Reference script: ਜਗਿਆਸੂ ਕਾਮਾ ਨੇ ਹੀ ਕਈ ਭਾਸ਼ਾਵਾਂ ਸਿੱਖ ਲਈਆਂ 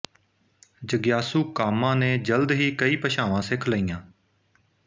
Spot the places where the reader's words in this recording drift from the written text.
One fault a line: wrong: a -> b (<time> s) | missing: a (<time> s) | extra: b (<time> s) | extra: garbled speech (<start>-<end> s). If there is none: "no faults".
extra: ਜਲਦ (2.2 s)